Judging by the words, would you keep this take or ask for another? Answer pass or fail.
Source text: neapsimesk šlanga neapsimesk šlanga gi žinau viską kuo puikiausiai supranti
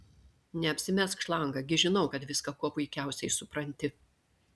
fail